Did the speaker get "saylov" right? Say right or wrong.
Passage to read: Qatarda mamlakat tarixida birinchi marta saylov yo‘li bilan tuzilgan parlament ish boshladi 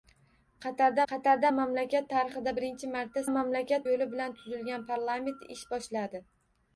wrong